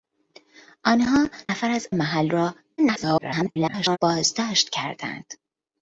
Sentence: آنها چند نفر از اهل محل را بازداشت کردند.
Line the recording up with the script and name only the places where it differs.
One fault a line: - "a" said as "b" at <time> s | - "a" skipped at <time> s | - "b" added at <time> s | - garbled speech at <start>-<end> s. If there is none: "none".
- "چند" skipped at 1.3 s
- "اهل" skipped at 1.9 s
- garbled speech at 2.8-4.0 s